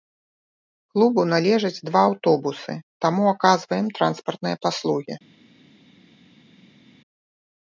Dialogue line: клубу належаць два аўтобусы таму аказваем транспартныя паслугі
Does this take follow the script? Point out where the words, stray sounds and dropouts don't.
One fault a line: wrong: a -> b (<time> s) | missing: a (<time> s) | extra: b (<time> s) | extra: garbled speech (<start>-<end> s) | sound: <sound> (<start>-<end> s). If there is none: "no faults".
no faults